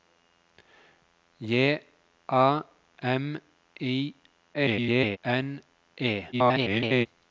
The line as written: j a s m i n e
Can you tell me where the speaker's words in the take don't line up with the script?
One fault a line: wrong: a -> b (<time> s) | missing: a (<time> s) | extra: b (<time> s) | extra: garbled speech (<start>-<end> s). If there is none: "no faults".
missing: s (2.6 s)
extra: garbled speech (4.5-5.2 s)
extra: garbled speech (6.3-7.1 s)